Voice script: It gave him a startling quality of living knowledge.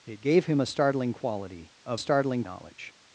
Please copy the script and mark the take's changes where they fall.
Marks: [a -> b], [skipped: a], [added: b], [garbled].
It gave him a startling quality of [living -> startling] knowledge.